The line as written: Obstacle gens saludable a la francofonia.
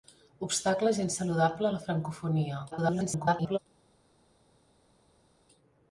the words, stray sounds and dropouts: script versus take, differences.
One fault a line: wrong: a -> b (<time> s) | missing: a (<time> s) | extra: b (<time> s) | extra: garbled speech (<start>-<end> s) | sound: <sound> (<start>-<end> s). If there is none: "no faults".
extra: garbled speech (2.7-3.6 s)